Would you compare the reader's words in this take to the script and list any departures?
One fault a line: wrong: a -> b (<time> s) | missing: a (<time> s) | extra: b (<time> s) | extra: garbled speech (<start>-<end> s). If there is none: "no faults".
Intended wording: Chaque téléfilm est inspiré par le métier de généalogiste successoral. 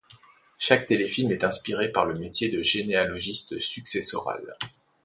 no faults